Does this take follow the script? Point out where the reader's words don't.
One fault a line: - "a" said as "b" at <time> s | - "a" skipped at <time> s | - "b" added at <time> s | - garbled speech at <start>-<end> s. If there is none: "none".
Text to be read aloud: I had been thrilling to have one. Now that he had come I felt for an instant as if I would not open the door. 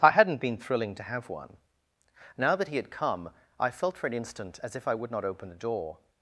- "had" said as "hadn't" at 0.1 s